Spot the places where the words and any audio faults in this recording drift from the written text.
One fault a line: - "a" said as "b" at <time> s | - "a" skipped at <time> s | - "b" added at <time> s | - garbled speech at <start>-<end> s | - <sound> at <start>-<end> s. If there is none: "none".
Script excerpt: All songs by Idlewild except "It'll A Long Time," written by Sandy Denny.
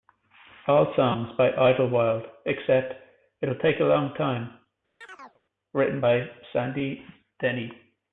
- "Take" added at 3.5 s
- chirp at 5.0-5.4 s